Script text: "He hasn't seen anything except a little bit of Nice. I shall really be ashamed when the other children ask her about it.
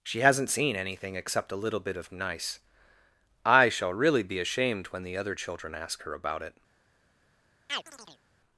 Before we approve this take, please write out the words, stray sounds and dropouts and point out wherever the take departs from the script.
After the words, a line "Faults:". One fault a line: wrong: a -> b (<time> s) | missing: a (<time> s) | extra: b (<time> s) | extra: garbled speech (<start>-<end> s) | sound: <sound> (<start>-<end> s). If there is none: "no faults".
"She hasn't seen anything except a little bit of Nice. I shall really be ashamed when the other children ask her about it.
Faults:
wrong: He -> She (0.0 s)
sound: chirp (7.7-8.2 s)